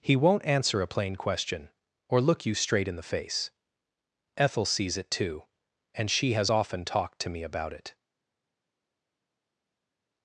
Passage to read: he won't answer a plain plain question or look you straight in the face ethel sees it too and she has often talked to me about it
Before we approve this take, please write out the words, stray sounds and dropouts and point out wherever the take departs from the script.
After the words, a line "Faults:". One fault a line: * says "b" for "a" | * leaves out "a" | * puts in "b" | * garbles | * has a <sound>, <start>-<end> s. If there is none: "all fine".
he won't answer a plain question or look you straight in the face ethel sees it too and she has often talked to me about it
Faults:
* leaves out "plain"